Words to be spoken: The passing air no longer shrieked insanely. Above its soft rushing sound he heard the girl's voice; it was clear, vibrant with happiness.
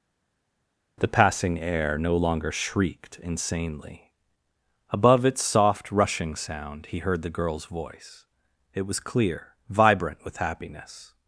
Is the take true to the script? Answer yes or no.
yes